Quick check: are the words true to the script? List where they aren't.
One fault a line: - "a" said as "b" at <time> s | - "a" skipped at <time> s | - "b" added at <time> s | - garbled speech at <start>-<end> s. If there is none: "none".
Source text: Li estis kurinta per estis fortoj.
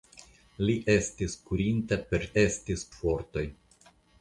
none